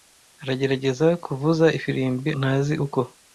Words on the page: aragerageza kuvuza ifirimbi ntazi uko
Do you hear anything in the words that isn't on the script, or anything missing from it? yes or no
no